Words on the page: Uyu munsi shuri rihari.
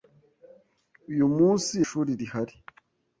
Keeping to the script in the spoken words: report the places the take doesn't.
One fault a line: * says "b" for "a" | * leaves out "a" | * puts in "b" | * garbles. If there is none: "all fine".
all fine